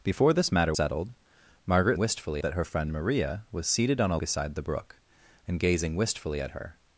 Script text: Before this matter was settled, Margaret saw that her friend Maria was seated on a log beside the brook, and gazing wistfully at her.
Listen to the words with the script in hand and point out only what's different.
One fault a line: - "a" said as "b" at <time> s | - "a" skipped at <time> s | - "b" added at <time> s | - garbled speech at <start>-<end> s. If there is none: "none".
- "was" skipped at 0.7 s
- "saw" said as "wistfully" at 2.0 s
- "log" skipped at 4.2 s